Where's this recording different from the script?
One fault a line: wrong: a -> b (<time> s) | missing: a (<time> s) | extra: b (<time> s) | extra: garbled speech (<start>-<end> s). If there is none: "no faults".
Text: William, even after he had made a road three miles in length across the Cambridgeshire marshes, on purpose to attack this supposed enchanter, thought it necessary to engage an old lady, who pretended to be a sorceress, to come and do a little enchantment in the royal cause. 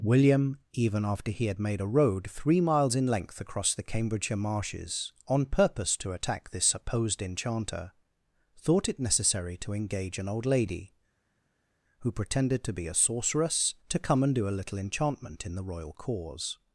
no faults